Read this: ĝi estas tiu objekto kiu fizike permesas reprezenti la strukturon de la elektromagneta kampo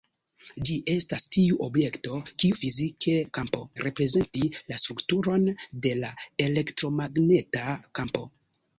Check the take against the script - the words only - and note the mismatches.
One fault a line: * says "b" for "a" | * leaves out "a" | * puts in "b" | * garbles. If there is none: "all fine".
* says "kampo" for "permesas"